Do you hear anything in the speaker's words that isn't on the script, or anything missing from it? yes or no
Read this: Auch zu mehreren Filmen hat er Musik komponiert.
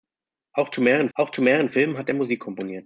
yes